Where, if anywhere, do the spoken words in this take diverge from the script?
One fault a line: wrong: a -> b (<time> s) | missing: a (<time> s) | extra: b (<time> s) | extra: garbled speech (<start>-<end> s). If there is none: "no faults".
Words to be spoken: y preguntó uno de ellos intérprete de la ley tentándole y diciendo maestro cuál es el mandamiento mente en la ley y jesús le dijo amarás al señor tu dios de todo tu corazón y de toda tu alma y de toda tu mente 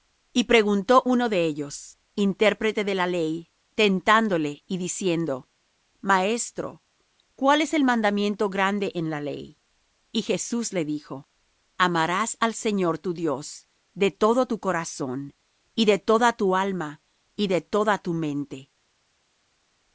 wrong: mente -> grande (8.5 s)